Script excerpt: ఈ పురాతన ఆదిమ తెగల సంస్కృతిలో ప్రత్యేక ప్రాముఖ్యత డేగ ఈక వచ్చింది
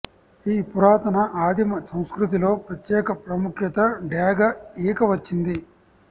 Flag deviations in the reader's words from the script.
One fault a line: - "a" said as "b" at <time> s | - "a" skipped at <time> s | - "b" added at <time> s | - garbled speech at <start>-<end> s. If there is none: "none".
- "తెగల" skipped at 1.8 s